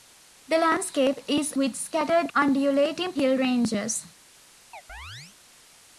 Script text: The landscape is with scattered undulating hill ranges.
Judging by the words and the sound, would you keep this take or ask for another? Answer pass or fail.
fail